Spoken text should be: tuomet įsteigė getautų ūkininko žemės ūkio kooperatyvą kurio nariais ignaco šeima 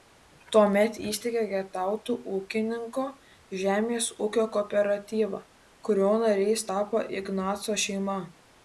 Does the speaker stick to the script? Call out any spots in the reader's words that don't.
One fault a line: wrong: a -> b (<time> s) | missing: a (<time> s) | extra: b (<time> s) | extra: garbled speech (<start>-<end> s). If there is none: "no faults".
extra: tapo (6.7 s)